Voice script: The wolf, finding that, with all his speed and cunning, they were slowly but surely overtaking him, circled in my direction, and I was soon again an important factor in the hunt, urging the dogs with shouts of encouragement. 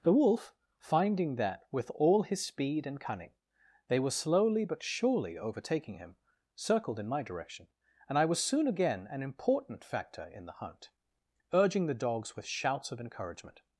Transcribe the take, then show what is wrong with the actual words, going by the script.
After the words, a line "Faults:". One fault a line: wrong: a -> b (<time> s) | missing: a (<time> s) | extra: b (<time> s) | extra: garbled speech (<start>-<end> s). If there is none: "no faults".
The wolf, finding that, with all his speed and cunning, they were slowly but surely overtaking him, circled in my direction, and I was soon again an important factor in the hunt, urging the dogs with shouts of encouragement.
Faults:
no faults